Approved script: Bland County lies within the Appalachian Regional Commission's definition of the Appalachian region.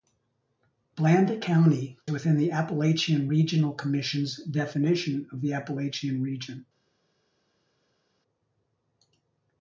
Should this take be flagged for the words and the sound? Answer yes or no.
yes